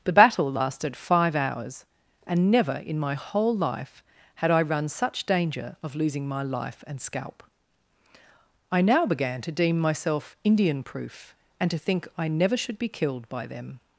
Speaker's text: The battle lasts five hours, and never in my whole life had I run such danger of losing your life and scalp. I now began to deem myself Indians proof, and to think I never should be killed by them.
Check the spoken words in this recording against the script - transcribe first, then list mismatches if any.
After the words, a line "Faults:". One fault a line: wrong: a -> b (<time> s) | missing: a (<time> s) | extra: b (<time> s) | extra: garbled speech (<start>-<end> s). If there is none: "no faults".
The battle lasted five hours, and never in my whole life had I run such danger of losing my life and scalp. I now began to deem myself Indian proof, and to think I never should be killed by them.
Faults:
wrong: lasts -> lasted (0.5 s)
wrong: your -> my (6.3 s)
wrong: Indians -> Indian (10.4 s)